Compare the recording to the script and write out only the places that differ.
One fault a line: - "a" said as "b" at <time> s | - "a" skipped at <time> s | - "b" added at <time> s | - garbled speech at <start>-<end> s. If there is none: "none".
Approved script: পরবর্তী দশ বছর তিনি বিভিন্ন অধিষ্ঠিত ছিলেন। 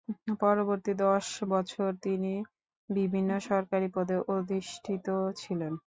- "সরকারি পদে" added at 3.5 s